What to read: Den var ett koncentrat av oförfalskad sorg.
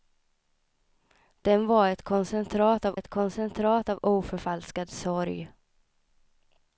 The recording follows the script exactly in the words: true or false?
false